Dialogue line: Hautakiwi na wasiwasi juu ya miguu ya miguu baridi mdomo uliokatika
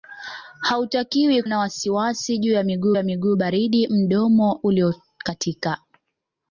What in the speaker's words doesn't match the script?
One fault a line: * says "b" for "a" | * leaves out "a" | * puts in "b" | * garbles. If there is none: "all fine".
all fine